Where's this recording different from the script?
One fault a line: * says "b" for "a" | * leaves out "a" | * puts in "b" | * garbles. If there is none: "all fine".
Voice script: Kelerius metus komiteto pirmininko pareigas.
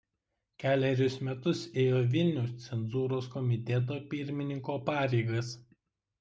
* puts in "ėjo Vilniaus cenzūros"